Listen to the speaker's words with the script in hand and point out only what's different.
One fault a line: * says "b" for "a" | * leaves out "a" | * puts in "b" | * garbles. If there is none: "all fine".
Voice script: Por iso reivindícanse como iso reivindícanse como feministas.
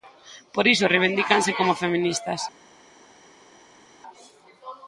* leaves out "iso reivindícanse como"